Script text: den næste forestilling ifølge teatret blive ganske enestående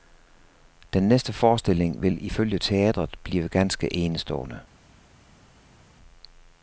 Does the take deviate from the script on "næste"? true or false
false